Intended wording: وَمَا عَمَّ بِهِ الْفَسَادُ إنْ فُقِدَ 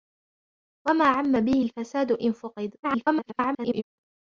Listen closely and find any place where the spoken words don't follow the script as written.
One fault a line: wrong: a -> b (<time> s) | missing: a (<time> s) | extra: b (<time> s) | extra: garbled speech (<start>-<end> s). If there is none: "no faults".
extra: garbled speech (2.8-3.8 s)